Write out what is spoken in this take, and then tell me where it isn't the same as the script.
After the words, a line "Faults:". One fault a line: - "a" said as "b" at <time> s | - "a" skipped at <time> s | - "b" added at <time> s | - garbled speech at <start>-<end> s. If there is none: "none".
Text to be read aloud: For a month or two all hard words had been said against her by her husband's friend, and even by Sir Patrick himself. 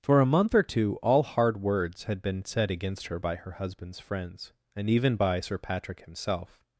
For a month or two all hard words had been said against her by her husband's friends, and even by Sir Patrick himself.
Faults:
- "friend" said as "friends" at 4.0 s